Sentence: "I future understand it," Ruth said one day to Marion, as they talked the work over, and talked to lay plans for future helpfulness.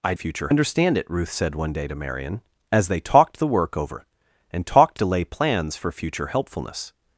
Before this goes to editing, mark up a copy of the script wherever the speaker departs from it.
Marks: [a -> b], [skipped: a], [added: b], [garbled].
"I future understand it," Ruth said one day to Marion, as they talked the work over, and talked to lay plans for future helpfulness.